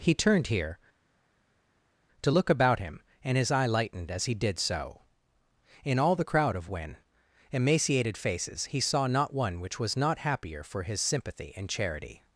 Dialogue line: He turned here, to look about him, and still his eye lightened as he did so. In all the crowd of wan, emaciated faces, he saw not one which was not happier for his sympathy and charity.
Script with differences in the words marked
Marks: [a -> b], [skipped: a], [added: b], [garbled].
He turned here, to look about him, and [skipped: still] his eye lightened as he did so. In all the crowd of wan, emaciated faces, he saw not one which was not happier for his sympathy and charity.